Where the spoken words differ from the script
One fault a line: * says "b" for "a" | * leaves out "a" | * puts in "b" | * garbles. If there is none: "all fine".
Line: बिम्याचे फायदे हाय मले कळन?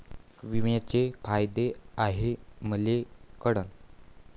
all fine